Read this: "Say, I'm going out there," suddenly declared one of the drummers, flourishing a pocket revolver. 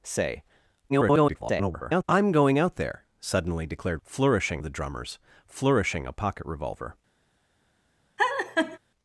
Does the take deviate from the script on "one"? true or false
true